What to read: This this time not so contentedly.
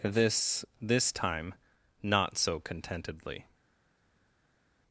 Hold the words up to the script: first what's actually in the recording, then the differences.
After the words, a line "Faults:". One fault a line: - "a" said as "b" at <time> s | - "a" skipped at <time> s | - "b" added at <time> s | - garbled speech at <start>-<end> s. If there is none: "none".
This this time not so contentedly.
Faults:
none